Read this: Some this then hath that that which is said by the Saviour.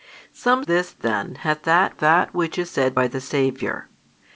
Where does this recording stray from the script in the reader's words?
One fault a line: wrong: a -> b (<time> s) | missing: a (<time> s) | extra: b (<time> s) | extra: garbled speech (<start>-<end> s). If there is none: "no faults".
no faults